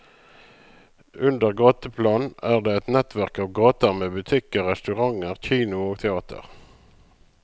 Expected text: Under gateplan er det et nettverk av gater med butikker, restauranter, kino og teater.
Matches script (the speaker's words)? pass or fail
pass